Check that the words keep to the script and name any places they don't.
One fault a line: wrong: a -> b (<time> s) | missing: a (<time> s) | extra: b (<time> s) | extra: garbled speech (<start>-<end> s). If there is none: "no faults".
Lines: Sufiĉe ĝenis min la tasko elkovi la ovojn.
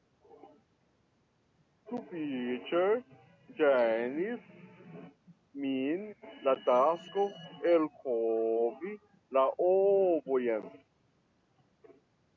no faults